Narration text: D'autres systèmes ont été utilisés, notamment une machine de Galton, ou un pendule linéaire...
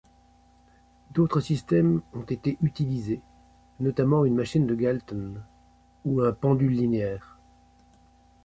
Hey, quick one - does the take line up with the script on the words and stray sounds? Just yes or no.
yes